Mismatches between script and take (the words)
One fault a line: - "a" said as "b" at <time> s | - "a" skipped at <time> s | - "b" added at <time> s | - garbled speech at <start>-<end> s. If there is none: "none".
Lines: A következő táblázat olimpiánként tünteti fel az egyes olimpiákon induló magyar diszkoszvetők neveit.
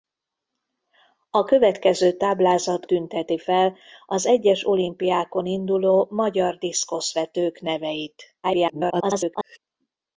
- "olimpiánként" skipped at 2.9 s
- garbled speech at 8.4-9.6 s